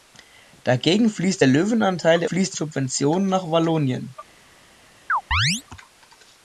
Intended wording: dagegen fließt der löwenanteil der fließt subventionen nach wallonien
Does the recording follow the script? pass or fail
pass